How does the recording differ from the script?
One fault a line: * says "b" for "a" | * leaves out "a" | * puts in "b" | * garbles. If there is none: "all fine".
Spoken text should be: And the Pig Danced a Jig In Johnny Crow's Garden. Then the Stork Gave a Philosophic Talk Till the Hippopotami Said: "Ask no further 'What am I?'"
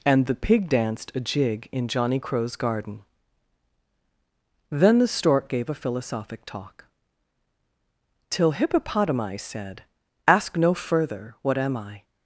* leaves out "the"